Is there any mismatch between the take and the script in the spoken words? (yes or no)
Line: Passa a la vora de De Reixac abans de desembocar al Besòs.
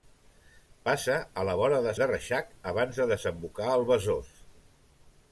no